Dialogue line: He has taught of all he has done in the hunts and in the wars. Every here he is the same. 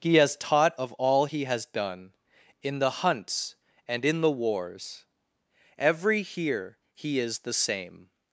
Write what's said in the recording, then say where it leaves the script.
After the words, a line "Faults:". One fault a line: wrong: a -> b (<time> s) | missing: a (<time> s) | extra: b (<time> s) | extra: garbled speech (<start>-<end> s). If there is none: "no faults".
He has taught of all he has done in the hunts and in the wars. Every here he is the same.
Faults:
no faults